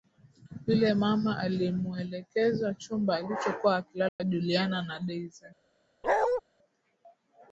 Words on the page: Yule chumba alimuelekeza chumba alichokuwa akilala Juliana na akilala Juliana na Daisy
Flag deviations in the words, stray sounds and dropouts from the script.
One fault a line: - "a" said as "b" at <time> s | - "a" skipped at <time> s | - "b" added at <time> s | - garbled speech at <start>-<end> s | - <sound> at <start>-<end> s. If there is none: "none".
- "chumba" said as "mama" at 0.9 s
- dropout at 4.1-4.2 s
- "akilala Juliana na" skipped at 5.0 s
- bark at 6.0-6.4 s